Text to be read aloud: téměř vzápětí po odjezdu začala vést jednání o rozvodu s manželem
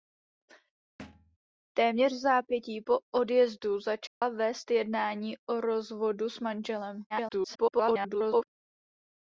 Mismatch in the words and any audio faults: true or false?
true